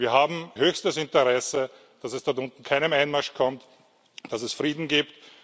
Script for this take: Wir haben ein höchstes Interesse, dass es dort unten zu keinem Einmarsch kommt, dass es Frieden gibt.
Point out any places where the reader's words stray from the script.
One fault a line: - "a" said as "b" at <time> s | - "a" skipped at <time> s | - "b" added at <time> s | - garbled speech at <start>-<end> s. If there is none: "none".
- "ein" skipped at 0.5 s
- "zu" skipped at 2.6 s